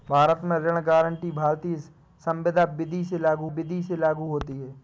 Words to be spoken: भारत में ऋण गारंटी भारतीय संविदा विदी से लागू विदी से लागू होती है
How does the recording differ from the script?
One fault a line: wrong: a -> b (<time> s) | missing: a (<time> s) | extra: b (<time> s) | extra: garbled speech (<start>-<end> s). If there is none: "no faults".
no faults